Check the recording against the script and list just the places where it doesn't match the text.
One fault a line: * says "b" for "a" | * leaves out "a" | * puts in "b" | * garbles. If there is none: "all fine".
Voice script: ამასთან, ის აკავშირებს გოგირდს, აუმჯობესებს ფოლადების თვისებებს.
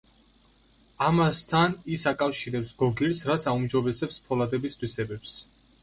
* puts in "რაც"